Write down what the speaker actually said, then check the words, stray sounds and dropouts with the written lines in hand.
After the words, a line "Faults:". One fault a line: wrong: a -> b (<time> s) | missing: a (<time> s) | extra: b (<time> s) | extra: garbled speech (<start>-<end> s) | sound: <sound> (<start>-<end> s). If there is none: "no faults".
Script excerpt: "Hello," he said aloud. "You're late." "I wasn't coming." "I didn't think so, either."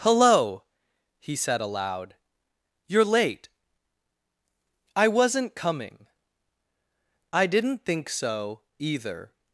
"Hello," he said aloud. "You're late." "I wasn't coming." "I didn't think so, either."
Faults:
no faults